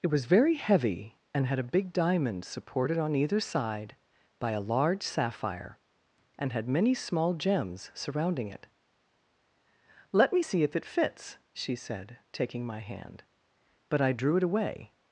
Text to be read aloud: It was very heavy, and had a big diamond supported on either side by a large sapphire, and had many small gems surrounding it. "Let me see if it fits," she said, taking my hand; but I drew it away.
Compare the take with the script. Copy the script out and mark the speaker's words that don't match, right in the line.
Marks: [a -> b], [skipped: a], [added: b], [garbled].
It was very heavy, and had a big diamond supported on either side by a large sapphire, and had many small gems surrounding it. "Let me see if it fits," she said, taking my hand; but I drew it away.